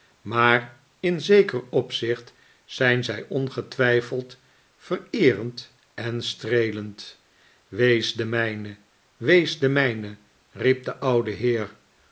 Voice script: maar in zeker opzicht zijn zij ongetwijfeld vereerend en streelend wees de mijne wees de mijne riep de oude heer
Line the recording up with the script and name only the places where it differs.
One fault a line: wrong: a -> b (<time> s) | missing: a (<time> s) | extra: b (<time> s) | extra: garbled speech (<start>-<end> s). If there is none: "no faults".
no faults